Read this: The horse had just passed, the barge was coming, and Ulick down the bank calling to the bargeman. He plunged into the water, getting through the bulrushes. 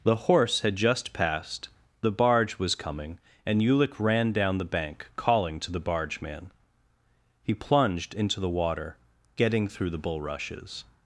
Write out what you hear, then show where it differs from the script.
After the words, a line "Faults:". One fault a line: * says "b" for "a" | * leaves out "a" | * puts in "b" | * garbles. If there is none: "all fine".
The horse had just passed, the barge was coming, and Ulick ran down the bank calling to the bargeman. He plunged into the water, getting through the bulrushes.
Faults:
* puts in "ran"